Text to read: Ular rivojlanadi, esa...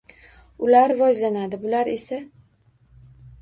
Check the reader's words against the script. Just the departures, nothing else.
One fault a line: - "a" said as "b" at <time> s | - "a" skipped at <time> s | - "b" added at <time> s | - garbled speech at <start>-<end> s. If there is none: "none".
- "bular" added at 1.6 s